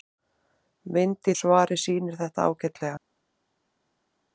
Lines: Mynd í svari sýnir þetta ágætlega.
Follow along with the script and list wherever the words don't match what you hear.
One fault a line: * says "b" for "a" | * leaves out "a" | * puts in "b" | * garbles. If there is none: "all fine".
all fine